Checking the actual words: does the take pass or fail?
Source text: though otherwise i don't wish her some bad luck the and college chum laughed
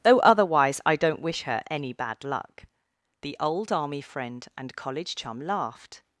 fail